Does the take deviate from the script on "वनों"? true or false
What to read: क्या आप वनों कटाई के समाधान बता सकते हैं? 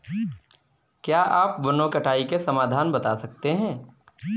false